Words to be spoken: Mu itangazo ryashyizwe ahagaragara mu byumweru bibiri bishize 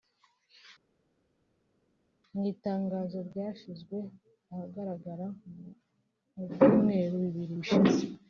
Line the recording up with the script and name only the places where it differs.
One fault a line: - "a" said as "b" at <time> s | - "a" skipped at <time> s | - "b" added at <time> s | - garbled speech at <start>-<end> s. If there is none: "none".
none